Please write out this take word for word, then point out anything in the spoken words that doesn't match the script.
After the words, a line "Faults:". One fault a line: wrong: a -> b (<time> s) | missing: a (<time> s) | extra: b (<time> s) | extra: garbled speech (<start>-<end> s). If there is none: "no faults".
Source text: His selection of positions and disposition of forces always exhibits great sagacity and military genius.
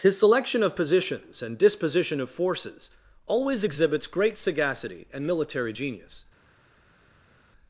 His selection of positions and disposition of forces always exhibits great sagacity and military genius.
Faults:
no faults